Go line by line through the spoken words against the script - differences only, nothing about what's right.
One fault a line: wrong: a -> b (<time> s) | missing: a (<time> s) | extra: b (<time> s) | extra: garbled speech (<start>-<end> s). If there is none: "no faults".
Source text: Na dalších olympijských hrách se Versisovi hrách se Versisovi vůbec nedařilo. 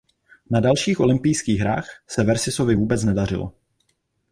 missing: hrách se Versisovi (2.8 s)